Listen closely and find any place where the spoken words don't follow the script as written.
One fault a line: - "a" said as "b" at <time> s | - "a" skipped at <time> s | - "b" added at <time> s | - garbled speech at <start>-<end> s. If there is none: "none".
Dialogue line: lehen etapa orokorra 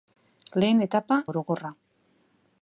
none